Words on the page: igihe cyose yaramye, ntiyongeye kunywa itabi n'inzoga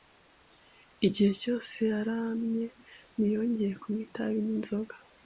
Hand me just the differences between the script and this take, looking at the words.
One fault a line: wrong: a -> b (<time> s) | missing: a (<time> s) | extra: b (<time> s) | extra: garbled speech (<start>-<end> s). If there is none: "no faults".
no faults